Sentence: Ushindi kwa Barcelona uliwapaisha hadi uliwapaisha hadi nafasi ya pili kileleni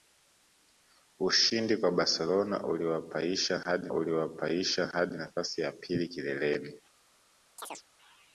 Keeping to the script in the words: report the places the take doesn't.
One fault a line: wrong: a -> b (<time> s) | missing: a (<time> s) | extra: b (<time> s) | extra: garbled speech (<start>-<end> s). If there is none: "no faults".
no faults